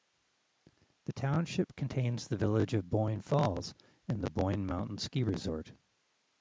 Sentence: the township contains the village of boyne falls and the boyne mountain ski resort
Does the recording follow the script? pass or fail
pass